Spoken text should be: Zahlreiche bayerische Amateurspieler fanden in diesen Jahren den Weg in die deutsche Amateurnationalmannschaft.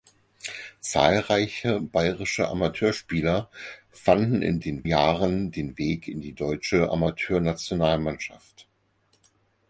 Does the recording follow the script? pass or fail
fail